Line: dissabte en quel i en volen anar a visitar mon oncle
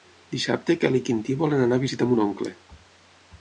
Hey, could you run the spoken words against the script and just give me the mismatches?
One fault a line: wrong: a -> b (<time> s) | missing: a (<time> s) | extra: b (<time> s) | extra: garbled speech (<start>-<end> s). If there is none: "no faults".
extra: quintí (1.1 s)